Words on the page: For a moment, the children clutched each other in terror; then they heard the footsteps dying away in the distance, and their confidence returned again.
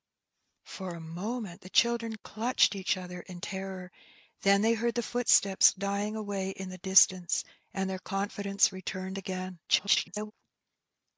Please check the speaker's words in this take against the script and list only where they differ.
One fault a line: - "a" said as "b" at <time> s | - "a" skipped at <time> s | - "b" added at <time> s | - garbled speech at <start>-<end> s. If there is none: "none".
- garbled speech at 9.7-10.3 s